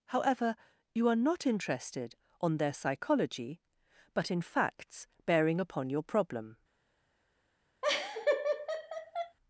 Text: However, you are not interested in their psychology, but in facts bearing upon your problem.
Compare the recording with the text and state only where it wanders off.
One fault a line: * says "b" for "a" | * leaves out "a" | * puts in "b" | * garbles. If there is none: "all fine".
* says "on" for "in"